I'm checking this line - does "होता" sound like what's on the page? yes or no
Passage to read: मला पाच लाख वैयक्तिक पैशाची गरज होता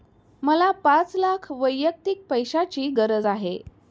no